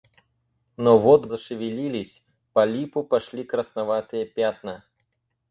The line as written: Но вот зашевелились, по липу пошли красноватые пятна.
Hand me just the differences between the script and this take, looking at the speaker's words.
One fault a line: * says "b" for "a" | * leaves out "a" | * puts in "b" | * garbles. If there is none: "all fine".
all fine